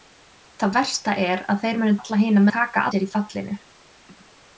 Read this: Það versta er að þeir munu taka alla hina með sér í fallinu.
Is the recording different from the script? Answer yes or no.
yes